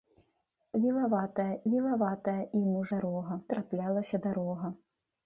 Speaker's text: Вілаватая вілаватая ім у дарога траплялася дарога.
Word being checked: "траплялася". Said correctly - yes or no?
yes